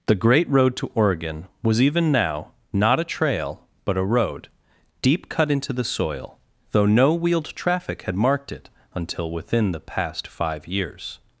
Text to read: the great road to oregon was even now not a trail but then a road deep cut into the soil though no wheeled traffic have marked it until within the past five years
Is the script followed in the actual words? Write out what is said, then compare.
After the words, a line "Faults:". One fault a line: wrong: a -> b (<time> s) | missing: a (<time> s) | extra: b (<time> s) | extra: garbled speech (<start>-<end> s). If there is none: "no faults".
the great road to oregon was even now not a trail but a road deep cut into the soil though no wheeled traffic had marked it until within the past five years
Faults:
missing: then (4.0 s)
wrong: have -> had (8.0 s)